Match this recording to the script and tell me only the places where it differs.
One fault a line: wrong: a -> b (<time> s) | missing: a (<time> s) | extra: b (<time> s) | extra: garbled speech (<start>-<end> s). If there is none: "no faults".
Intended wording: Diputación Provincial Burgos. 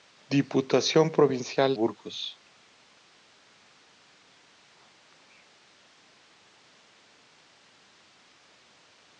no faults